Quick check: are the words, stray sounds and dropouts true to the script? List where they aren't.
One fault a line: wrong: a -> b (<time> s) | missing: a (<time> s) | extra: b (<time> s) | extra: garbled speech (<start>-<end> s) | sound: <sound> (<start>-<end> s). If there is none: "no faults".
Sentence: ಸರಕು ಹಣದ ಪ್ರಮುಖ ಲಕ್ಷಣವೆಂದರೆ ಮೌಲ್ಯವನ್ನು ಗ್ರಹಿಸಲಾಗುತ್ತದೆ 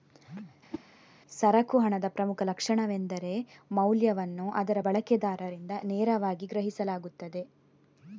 sound: whoosh (0.7-0.8 s)
extra: ಅದರ ಬಳಕೆದಾರರಿಂದ ನೇರವಾಗಿ (4.5 s)